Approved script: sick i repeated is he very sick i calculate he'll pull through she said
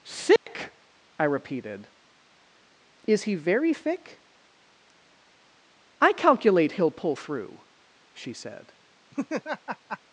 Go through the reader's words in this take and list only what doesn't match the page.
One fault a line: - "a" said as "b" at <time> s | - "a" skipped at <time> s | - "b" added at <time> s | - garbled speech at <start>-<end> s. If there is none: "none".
- "sick" said as "thick" at 3.7 s